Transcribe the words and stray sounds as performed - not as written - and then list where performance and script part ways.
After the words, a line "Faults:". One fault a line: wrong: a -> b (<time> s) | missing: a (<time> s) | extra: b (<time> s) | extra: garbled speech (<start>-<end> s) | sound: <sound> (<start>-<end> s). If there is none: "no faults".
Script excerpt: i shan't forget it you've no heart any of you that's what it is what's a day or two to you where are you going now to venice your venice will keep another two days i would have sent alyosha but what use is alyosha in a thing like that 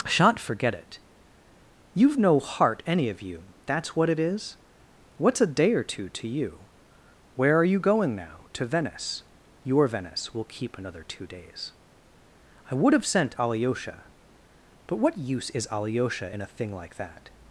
shan't forget it you've no heart any of you that's what it is what's a day or two to you where are you going now to venice your venice will keep another two days i would have sent alyosha but what use is alyosha in a thing like that
Faults:
missing: i (0.1 s)